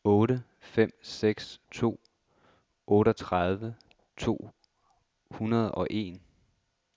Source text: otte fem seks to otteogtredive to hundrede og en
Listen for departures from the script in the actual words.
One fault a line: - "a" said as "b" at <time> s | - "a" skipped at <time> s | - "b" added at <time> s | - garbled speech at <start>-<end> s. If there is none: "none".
none